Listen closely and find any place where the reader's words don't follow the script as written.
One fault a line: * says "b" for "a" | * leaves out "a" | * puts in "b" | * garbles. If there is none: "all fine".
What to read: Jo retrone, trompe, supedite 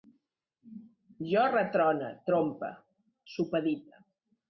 all fine